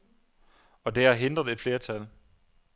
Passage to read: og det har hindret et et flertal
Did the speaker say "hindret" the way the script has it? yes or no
yes